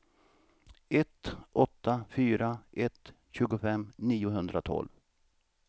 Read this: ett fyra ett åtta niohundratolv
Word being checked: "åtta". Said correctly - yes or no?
no